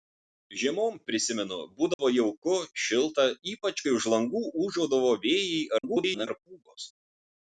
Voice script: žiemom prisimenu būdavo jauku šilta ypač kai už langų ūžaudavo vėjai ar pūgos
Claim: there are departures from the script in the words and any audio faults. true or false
true